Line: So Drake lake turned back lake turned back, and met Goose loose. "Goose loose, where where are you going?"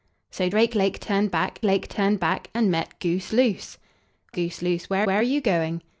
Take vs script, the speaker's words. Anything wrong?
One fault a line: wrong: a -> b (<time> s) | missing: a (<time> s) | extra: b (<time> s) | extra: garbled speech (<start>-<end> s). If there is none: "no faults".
no faults